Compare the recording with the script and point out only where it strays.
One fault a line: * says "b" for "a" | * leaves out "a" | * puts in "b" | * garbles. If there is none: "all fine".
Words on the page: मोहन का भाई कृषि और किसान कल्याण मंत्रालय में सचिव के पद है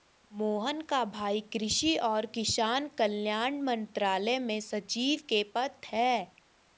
all fine